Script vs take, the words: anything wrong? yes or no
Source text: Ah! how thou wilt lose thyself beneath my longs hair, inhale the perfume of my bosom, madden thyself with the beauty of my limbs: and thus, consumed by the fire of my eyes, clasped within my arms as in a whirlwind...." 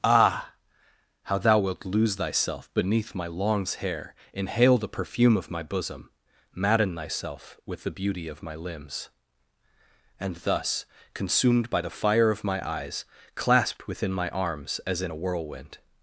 no